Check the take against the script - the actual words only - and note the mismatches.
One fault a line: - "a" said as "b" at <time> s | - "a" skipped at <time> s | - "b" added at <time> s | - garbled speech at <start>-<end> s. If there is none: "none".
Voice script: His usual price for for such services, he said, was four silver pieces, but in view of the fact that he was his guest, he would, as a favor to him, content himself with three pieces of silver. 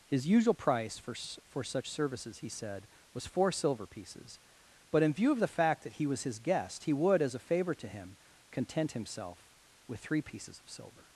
none